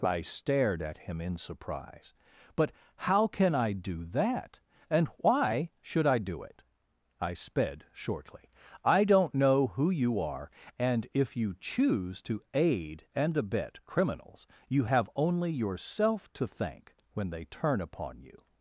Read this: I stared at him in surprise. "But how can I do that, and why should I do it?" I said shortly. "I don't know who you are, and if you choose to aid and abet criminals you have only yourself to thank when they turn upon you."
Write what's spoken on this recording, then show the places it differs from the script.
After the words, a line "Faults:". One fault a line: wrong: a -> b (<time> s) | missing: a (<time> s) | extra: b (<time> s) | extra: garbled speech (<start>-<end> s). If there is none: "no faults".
I stared at him in surprise. "But how can I do that, and why should I do it?" I sped shortly. "I don't know who you are, and if you choose to aid and abet criminals you have only yourself to thank when they turn upon you."
Faults:
wrong: said -> sped (7.3 s)